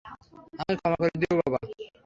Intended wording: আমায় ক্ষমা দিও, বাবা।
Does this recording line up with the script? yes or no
no